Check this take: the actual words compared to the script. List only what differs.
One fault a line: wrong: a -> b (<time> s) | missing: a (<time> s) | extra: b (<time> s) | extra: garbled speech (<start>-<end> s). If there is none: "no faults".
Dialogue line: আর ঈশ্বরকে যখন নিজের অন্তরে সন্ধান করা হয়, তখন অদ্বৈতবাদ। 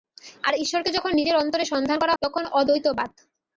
missing: হয় (2.1 s)